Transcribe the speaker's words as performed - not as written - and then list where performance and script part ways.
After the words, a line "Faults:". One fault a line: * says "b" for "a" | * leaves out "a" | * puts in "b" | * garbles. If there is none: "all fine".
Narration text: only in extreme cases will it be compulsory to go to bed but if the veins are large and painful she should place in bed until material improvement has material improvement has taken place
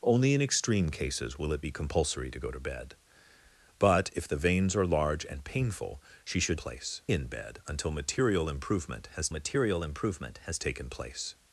only in extreme cases will it be compulsory to go to bed but if the veins are large and painful she should place in bed until material improvement has material improvement has taken place
Faults:
all fine